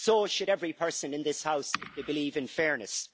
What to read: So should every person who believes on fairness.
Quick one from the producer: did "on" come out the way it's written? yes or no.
no